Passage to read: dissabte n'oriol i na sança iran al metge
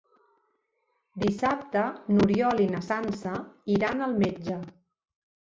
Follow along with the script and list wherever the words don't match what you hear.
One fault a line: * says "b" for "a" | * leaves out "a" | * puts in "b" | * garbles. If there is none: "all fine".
all fine